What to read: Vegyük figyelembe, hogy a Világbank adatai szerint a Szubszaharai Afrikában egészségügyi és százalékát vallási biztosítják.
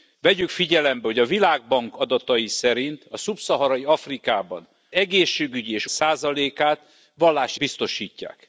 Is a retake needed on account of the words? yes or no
no